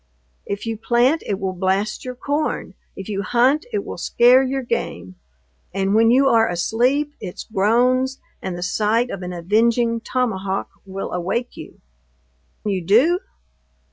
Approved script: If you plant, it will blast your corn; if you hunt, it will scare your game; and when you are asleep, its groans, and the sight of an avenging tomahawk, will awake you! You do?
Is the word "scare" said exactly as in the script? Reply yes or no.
yes